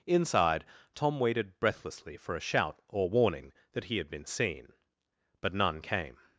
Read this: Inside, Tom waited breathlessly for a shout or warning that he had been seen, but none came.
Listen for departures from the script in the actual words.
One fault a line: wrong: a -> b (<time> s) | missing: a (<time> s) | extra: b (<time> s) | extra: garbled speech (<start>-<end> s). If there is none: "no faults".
no faults